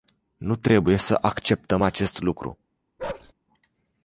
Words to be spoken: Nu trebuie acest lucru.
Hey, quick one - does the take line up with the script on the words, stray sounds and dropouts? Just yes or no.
no